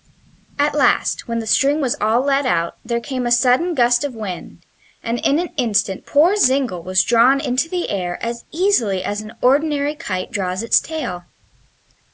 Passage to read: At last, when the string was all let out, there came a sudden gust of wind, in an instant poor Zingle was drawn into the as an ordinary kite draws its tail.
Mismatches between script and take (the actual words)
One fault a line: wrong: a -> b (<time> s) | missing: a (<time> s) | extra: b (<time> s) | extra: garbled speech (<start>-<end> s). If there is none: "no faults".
extra: and (5.0 s)
extra: air as easily (7.9 s)